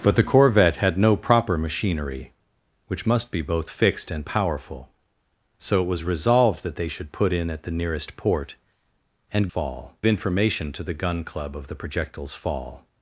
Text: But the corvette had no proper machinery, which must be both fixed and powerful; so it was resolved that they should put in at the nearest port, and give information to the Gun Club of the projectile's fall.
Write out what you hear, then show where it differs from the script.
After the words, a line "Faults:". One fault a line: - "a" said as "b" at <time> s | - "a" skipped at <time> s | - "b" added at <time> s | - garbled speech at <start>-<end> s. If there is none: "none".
But the corvette had no proper machinery, which must be both fixed and powerful; so it was resolved that they should put in at the nearest port, and fall information to the Gun Club of the projectile's fall.
Faults:
- "give" said as "fall" at 9.5 s